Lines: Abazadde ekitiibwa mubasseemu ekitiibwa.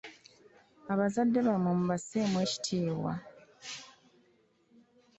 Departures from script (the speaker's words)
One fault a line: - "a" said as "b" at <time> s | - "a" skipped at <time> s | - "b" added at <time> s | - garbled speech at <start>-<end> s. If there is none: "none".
- "ekitiibwa" said as "bammwe" at 1.5 s